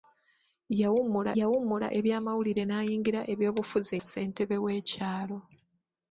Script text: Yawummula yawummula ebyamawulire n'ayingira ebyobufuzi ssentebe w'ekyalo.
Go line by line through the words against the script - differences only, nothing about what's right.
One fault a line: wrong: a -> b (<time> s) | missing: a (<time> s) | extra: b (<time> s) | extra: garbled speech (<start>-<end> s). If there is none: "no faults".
no faults